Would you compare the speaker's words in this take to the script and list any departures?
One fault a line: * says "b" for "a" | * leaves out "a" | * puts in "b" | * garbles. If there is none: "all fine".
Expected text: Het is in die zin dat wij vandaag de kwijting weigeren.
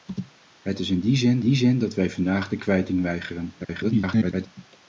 * puts in "die zin"
* garbles